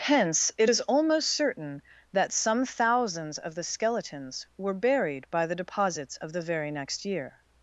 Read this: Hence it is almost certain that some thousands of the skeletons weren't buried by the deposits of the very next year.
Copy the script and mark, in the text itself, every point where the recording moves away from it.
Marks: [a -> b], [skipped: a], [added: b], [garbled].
Hence it is almost certain that some thousands of the skeletons [weren't -> were] buried by the deposits of the very next year.